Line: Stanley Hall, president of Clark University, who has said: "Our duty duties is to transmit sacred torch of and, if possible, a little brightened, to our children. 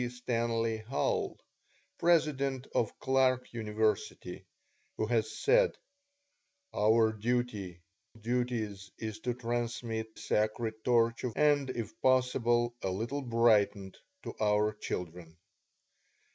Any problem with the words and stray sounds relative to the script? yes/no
no